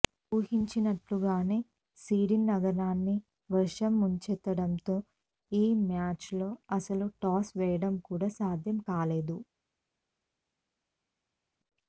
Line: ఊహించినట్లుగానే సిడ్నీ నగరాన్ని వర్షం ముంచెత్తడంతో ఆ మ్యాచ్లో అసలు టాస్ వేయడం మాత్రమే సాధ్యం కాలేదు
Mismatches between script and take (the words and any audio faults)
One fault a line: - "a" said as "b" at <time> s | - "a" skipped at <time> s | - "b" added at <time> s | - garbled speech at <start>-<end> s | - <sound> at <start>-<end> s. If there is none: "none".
- "ఆ" said as "ఈ" at 5.5 s
- "మాత్రమే" said as "కూడా" at 8.1 s